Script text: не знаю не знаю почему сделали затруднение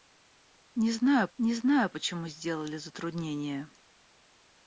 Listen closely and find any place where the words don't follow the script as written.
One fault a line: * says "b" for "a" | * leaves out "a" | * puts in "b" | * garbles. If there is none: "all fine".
all fine